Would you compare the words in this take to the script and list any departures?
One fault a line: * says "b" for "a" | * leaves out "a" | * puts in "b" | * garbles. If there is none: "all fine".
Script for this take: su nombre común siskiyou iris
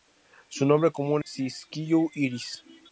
all fine